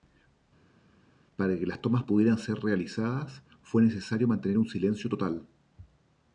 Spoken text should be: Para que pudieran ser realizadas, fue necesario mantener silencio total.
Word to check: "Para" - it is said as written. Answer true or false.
true